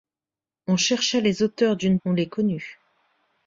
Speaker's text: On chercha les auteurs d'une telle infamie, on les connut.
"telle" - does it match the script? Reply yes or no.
no